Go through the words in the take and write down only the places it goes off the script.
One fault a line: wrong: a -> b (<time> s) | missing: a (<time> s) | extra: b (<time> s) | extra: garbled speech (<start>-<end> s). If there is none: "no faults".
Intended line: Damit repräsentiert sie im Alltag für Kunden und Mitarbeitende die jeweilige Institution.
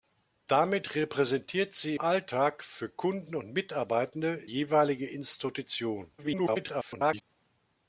missing: im (1.9 s)
missing: die (4.4 s)
extra: garbled speech (6.2-7.2 s)